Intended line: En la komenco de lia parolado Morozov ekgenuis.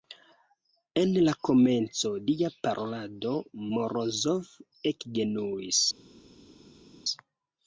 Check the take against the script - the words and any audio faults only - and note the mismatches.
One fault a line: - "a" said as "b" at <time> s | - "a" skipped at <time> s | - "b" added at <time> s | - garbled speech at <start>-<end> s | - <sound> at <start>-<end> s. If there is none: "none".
- "de" skipped at 2.1 s